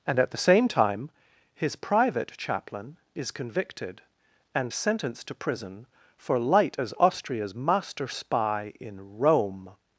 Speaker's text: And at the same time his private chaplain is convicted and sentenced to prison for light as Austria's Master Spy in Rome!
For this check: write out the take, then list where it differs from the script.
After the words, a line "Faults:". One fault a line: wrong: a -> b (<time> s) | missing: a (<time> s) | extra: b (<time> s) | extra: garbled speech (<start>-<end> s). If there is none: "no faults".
And at the same time his private chaplain is convicted and sentenced to prison for light as Austria's Master Spy in Rome!
Faults:
no faults